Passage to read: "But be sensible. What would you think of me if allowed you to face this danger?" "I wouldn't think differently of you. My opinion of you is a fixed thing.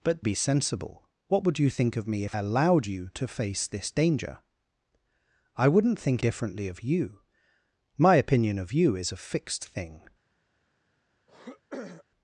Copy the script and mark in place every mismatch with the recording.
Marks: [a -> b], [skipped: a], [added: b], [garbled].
"But be sensible. What would you think of me if allowed you to face this danger?" "I wouldn't think differently of you. My opinion of you is a fixed thing.